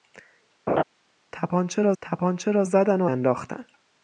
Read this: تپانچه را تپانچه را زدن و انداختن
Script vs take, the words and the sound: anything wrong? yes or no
yes